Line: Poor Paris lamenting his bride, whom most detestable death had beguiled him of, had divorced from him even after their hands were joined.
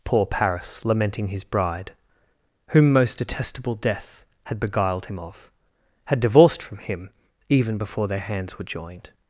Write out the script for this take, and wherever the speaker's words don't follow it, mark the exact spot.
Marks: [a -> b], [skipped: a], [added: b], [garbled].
Poor Paris lamenting his bride, whom most detestable death had beguiled him of, had divorced from him even [after -> before] their hands were joined.